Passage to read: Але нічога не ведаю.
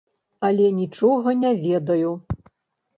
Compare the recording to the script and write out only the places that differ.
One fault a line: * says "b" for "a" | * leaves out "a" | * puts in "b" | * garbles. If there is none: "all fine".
all fine